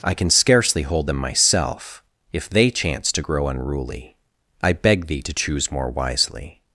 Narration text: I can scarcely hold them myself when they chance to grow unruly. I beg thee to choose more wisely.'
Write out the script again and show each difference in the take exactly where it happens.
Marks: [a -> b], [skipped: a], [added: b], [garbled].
I can scarcely hold them myself [when -> if] they chance to grow unruly. I beg thee to choose more wisely.'